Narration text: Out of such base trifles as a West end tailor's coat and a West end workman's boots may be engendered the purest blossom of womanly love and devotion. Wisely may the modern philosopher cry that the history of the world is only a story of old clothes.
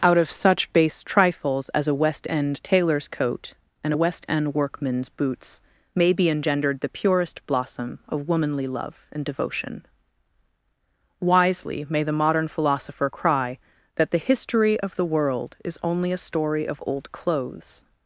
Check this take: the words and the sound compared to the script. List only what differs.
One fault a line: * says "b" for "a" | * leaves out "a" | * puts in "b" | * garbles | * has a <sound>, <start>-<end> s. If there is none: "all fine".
all fine